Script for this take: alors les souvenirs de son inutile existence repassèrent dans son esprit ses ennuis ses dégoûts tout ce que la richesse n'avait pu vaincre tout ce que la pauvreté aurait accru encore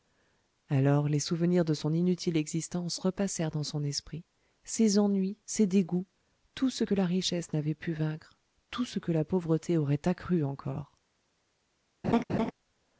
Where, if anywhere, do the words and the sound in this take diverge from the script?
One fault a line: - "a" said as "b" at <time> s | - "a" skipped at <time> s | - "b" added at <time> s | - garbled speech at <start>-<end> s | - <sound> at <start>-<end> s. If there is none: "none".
- laugh at 12.0-12.5 s